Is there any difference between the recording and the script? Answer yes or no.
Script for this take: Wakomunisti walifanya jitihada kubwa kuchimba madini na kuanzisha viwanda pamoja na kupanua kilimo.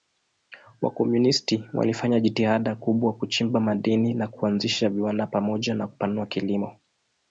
no